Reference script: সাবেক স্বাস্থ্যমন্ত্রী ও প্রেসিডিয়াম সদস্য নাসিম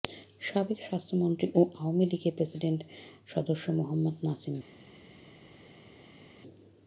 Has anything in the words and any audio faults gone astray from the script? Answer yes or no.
yes